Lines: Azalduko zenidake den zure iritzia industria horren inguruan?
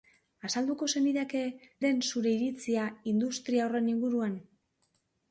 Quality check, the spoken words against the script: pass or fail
pass